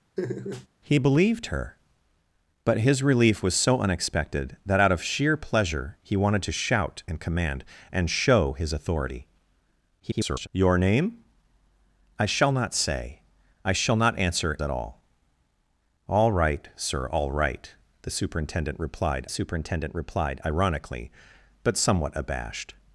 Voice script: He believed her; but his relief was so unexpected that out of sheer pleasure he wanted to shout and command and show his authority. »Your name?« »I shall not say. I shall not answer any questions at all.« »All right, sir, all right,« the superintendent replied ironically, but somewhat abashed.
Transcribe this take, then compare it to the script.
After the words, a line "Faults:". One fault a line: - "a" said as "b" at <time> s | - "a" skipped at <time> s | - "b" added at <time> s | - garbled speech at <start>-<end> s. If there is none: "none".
He believed her; but his relief was so unexpected that out of sheer pleasure he wanted to shout and command and show his authority. [garbled] »Your name?« »I shall not say. I shall not answer at all.« »All right, sir, all right,« the superintendent replied superintendent replied ironically, but somewhat abashed.
Faults:
- garbled speech at 10.0-10.5 s
- "any questions" skipped at 14.6 s
- "superintendent replied" added at 19.3 s